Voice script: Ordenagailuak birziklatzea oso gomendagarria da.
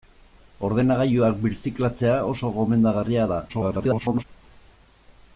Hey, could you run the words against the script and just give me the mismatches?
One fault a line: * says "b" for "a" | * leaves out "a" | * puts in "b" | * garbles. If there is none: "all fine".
* garbles